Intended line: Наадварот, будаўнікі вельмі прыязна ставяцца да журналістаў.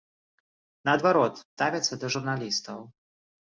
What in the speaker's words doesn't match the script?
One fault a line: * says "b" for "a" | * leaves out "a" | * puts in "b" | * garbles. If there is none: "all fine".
* leaves out "будаўнікі вельмі прыязна"